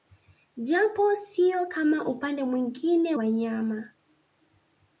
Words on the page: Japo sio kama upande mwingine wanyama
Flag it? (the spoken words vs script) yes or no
no